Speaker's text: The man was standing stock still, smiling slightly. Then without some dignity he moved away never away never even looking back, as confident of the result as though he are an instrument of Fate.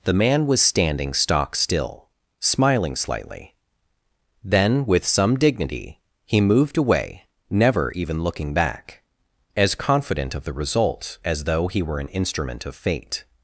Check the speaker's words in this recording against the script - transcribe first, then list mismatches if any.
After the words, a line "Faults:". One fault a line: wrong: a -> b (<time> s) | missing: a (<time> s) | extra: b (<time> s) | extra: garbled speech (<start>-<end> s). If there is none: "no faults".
The man was standing stock still, smiling slightly. Then with some dignity he moved away never even looking back, as confident of the result as though he were an instrument of Fate.
Faults:
wrong: without -> with (4.9 s)
missing: away never (7.9 s)
wrong: are -> were (11.8 s)